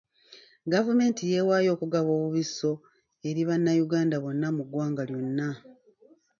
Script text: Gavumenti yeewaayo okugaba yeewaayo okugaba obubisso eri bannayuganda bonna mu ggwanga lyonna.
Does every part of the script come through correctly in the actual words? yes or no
no